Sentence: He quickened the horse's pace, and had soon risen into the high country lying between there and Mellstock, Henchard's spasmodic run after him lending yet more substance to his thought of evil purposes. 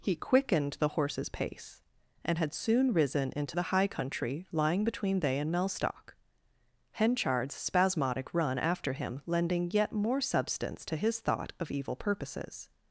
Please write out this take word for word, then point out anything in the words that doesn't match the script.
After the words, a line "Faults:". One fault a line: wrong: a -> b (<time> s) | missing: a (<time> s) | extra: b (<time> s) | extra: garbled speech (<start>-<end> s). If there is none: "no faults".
He quickened the horse's pace, and had soon risen into the high country lying between they and Mellstock, Henchard's spasmodic run after him lending yet more substance to his thought of evil purposes.
Faults:
wrong: there -> they (5.2 s)